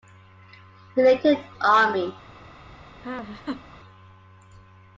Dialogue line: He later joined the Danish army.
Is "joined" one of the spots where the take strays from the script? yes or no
yes